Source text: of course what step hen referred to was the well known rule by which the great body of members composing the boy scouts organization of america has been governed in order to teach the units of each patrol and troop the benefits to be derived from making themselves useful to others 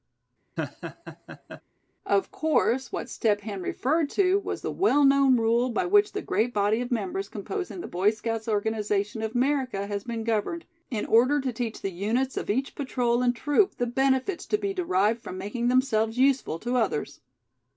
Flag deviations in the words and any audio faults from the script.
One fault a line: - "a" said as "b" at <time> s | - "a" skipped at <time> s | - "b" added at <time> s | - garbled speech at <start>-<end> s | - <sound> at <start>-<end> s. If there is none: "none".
- laugh at 0.6-1.6 s